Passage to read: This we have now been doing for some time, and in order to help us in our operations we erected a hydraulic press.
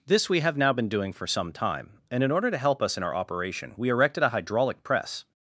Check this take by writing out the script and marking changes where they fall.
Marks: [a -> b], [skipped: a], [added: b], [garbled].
This we have now been doing for some time, and in order to help us in our [operations -> operation] we erected a hydraulic press.